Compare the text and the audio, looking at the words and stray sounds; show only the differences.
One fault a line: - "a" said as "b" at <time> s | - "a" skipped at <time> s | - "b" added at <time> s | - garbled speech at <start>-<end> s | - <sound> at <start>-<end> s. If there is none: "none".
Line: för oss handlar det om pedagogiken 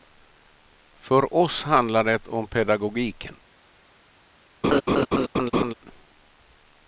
- laugh at 4.6-5.7 s